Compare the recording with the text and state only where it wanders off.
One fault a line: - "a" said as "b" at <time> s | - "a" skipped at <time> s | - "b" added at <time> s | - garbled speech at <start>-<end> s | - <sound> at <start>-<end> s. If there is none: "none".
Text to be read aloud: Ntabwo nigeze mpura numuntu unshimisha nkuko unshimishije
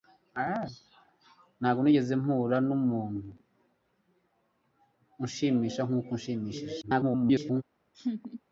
- garbled speech at 6.8-7.6 s
- laugh at 7.9-8.4 s